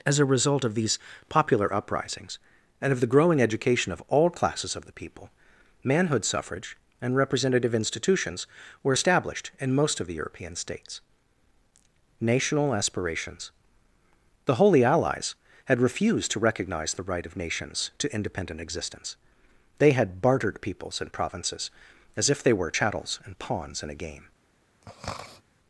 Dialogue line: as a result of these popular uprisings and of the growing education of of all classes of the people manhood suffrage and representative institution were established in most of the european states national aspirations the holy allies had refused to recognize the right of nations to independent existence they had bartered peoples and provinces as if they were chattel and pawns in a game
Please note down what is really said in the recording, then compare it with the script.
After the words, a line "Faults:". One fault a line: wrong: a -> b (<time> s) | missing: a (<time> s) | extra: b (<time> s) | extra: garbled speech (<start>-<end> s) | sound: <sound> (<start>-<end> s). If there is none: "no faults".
as a result of these popular uprisings and of the growing education of all classes of the people manhood suffrage and representative institutions were established in most of the european states national aspirations the holy allies had refused to recognize the right of nations to independent existence they had bartered peoples and provinces as if they were chattels and pawns in a game
Faults:
missing: of (4.0 s)
wrong: institution -> institutions (7.7 s)
wrong: chattel -> chattels (22.7 s)
sound: throat clearing (24.8-25.4 s)